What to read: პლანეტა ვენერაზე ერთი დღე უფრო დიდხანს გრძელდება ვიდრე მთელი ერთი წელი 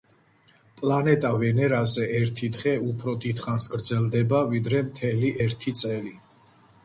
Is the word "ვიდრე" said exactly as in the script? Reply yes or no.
yes